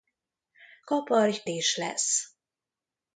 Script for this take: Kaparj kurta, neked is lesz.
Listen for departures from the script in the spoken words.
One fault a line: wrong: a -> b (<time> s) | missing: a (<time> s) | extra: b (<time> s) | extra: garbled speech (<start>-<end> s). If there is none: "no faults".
missing: kurta neked (1.4 s)